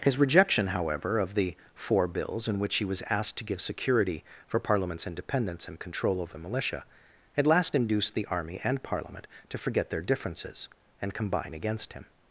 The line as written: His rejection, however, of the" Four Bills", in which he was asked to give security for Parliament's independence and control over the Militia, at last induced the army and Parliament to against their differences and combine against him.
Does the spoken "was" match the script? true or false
true